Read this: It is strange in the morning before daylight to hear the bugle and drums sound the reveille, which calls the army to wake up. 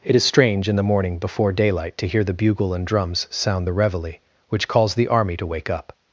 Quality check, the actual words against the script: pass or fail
pass